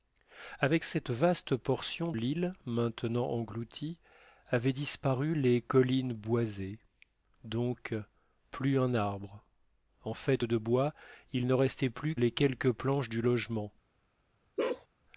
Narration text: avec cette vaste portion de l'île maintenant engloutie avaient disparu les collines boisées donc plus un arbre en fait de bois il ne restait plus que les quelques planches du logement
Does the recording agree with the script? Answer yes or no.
no